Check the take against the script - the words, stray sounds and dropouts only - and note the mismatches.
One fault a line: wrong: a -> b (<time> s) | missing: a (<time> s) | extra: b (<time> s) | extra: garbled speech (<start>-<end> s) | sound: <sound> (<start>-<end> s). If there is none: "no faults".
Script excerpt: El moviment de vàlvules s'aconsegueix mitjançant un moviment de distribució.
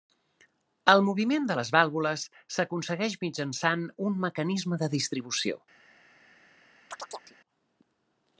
extra: les (1.6 s)
wrong: moviment -> mecanisme (4.3 s)
sound: chirp (6.9-7.4 s)